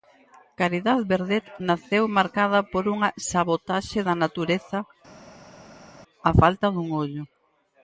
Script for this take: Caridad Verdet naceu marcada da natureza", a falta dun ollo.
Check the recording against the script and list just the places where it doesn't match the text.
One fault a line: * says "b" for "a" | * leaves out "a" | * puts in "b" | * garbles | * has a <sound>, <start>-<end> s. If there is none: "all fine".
* puts in "por unha sabotaxe"